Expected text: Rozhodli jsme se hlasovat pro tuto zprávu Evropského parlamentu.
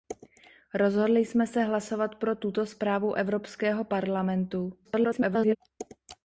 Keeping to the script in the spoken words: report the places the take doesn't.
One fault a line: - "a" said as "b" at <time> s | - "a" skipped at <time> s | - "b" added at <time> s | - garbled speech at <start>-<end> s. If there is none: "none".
- garbled speech at 4.8-5.6 s